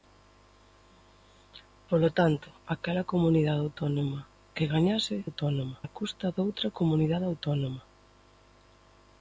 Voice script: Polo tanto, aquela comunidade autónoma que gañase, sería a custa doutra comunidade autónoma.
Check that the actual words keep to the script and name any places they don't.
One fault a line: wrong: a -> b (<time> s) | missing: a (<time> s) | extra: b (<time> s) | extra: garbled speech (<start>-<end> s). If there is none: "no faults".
wrong: sería -> autónoma (5.3 s)